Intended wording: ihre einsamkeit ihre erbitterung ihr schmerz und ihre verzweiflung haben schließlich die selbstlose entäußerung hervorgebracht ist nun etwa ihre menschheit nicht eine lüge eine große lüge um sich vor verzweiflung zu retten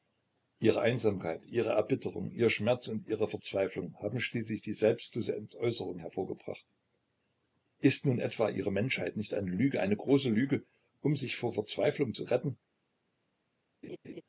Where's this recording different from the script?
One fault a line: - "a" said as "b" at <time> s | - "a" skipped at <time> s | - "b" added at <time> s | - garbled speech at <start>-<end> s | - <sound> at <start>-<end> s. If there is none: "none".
- laugh at 13.8-14.2 s